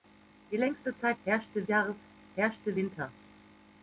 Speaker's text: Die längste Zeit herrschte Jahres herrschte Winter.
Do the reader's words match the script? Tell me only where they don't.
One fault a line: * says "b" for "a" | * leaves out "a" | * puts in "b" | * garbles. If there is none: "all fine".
all fine